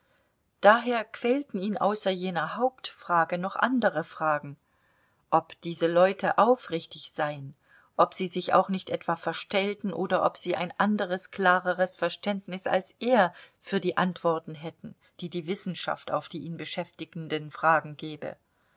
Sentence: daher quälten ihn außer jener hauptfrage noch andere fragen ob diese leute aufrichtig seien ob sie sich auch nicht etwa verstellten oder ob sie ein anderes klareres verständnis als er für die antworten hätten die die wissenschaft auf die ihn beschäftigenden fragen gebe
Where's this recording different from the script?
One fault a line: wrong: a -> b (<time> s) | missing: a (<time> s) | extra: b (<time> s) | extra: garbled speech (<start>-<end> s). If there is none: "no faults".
no faults